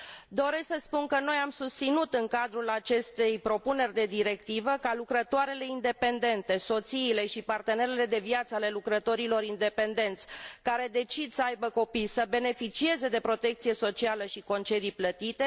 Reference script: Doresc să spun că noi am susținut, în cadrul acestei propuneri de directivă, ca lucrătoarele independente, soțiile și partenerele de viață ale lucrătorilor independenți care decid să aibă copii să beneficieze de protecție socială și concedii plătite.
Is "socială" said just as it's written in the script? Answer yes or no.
yes